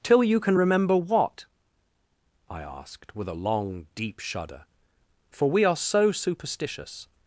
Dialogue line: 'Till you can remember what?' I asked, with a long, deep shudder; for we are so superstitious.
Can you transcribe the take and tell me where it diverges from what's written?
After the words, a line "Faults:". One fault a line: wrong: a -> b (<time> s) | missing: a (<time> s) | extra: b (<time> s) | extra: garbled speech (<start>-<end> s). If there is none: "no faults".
'Till you can remember what?' I asked, with a long, deep shudder; for we are so superstitious.
Faults:
no faults